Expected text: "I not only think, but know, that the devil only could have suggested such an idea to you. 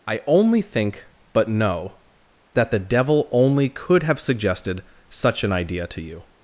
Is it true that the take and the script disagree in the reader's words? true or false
true